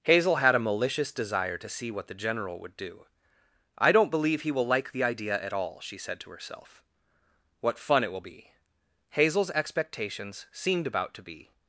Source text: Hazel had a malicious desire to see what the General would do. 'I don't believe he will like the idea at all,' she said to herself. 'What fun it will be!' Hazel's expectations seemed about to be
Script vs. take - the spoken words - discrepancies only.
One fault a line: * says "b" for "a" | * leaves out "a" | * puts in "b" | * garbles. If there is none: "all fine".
all fine